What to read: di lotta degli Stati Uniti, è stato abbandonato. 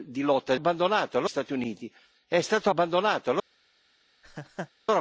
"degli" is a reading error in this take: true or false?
true